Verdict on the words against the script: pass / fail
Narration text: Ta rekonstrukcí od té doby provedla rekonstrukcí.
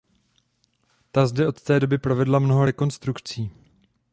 fail